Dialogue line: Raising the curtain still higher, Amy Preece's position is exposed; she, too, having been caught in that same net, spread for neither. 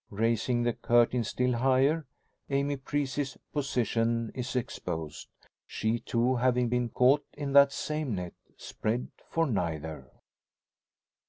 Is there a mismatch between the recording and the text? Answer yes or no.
no